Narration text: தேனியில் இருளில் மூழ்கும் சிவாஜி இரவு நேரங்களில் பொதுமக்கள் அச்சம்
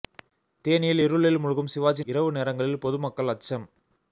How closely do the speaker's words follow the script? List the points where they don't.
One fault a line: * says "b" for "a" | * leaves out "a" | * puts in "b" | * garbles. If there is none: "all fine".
all fine